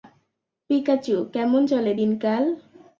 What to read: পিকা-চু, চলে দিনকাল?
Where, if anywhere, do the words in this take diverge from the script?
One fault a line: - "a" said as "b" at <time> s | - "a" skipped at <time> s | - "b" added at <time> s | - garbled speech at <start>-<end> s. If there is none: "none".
- "কেমন" added at 1.3 s